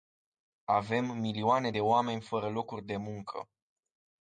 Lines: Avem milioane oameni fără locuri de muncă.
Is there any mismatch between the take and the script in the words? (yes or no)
yes